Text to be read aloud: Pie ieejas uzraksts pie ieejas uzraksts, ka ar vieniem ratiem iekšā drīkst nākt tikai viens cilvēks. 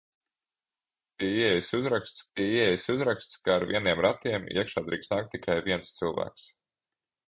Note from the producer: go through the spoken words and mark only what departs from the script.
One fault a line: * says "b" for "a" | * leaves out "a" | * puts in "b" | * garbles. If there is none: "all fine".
all fine